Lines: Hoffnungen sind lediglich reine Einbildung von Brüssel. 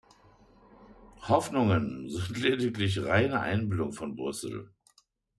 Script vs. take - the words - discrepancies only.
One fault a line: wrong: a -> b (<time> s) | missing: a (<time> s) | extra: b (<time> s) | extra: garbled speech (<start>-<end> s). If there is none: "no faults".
no faults